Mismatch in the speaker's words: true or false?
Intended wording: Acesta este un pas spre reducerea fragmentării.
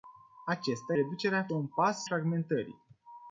true